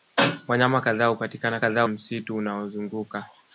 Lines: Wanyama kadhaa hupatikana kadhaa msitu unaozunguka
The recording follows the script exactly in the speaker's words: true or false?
true